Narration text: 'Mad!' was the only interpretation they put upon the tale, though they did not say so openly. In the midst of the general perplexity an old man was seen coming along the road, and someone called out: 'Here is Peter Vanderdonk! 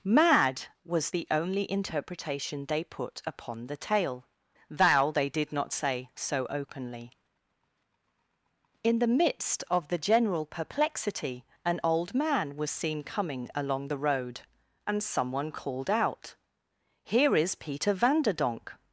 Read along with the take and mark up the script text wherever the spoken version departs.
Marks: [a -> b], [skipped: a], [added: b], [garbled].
'Mad!' was the only interpretation they put upon the tale, [though -> thou] they did not say so openly. In the midst of the general perplexity an old man was seen coming along the road, and someone called out: 'Here is Peter Vanderdonk!